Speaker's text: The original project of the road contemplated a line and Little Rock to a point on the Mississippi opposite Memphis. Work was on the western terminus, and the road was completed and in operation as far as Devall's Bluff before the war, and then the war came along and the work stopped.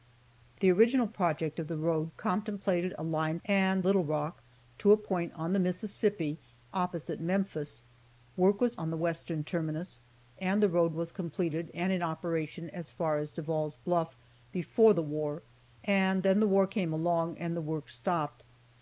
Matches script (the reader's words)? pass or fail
pass